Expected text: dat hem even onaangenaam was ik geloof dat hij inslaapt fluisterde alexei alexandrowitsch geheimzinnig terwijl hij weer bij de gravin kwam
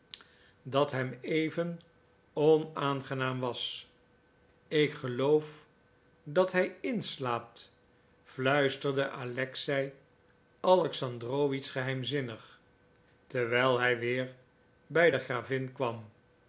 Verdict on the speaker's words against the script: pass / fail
pass